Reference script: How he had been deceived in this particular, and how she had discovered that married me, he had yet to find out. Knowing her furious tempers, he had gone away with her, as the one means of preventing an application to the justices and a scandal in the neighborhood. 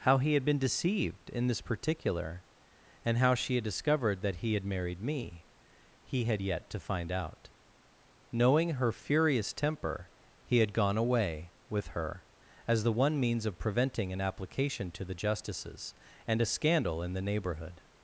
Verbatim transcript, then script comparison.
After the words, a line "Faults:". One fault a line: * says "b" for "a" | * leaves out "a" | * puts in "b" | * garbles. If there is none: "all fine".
How he had been deceived in this particular, and how she had discovered that he had married me, he had yet to find out. Knowing her furious temper, he had gone away with her, as the one means of preventing an application to the justices and a scandal in the neighborhood.
Faults:
* puts in "he had"
* says "temper" for "tempers"